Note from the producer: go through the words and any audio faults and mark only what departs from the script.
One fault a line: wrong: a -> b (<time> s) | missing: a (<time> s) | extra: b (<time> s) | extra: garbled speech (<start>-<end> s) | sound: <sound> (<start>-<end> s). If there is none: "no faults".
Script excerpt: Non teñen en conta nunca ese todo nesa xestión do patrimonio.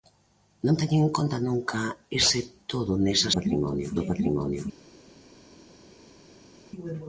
wrong: xestión -> patrimonio (3.4 s)